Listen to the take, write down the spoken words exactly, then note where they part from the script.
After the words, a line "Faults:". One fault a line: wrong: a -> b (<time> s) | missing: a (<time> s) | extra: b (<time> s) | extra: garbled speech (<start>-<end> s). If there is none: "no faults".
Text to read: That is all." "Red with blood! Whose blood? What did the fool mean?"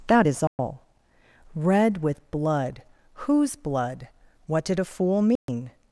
That is all." "Red with blood! Whose blood? What did a fool mean?"
Faults:
wrong: the -> a (4.8 s)